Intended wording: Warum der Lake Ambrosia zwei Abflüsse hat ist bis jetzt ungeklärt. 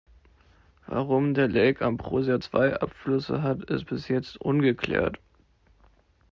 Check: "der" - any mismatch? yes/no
no